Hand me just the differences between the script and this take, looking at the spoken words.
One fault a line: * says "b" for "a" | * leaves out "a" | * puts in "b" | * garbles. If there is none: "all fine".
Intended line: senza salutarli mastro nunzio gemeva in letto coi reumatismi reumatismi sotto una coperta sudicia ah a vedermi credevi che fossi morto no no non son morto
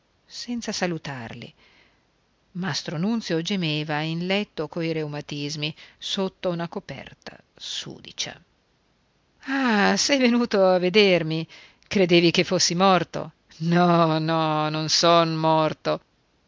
* leaves out "reumatismi"
* puts in "sei venuto"